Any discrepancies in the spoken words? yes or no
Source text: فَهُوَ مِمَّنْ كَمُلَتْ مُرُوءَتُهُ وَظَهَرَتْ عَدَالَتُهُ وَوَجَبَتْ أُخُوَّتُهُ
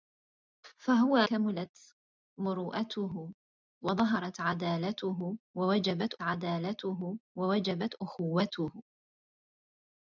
yes